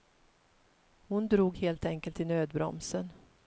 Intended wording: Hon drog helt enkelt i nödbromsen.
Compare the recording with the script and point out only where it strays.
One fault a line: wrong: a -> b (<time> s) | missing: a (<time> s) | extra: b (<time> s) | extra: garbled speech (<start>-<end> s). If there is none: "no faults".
no faults